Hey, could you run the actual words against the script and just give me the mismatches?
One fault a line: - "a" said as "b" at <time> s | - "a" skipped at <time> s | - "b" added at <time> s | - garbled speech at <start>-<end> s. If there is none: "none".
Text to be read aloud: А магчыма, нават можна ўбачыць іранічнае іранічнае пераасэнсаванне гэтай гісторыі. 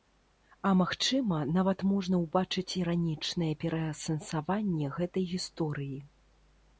- "іранічнае" skipped at 3.5 s